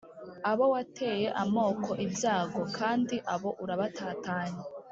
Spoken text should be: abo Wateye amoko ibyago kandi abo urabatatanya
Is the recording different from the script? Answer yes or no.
no